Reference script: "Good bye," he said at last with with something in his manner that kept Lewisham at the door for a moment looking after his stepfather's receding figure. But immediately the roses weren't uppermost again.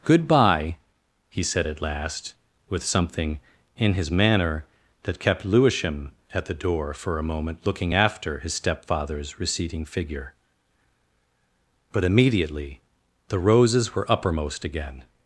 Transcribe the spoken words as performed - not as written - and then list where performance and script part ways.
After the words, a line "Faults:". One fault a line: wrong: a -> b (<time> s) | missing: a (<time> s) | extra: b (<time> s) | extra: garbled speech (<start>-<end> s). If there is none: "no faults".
"Good bye," he said at last with something in his manner that kept Lewisham at the door for a moment looking after his stepfather's receding figure. But immediately the roses were uppermost again.
Faults:
missing: with (2.8 s)
wrong: weren't -> were (13.9 s)